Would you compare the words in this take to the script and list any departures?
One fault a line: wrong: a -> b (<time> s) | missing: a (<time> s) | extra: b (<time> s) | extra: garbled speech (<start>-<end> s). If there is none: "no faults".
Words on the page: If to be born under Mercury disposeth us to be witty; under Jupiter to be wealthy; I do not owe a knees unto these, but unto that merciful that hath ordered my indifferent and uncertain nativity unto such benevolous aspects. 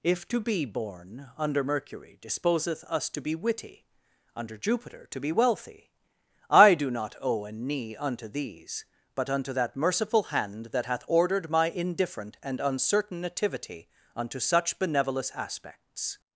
wrong: knees -> knee (7.5 s)
extra: hand (10.3 s)